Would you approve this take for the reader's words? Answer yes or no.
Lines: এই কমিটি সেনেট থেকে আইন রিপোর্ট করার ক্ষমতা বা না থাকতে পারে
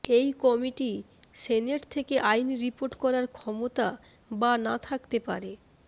yes